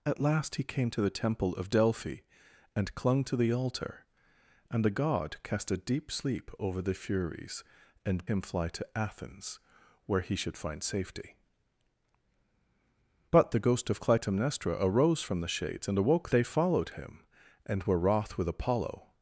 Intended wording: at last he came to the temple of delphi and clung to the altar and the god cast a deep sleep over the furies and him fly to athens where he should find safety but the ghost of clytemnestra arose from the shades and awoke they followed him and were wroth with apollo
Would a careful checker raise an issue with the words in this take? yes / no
no